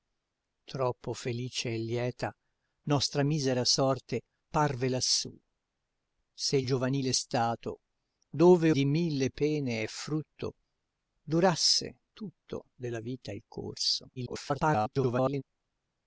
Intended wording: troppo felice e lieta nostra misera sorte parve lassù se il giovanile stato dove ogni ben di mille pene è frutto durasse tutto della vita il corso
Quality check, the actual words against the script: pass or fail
fail